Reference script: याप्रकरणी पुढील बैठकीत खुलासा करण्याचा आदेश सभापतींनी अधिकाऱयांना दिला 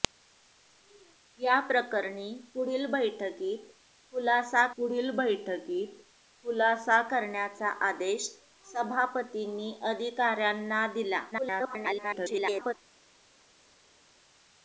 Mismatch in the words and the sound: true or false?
true